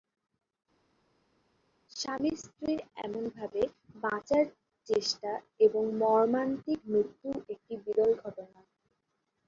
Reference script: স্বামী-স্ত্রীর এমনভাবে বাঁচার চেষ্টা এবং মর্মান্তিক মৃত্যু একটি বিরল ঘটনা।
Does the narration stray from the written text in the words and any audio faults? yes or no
no